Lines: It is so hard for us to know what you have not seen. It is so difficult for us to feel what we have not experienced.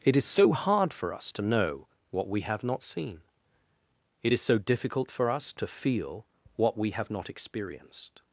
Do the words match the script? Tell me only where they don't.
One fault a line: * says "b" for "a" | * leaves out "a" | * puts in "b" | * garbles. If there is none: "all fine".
* says "we" for "you"